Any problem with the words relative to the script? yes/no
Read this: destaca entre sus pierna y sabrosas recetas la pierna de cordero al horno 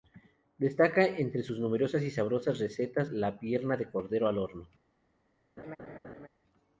yes